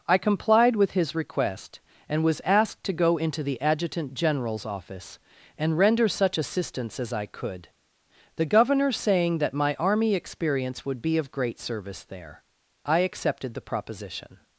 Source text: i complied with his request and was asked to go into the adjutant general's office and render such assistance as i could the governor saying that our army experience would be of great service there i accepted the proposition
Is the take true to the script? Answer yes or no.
no